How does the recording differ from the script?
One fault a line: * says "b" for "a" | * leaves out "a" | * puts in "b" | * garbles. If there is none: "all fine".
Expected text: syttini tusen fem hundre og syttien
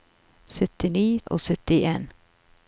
* leaves out "tusen fem hundre"